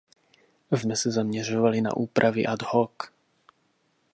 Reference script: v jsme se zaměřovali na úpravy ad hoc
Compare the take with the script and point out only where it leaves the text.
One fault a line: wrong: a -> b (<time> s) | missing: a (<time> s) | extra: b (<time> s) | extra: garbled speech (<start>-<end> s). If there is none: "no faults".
no faults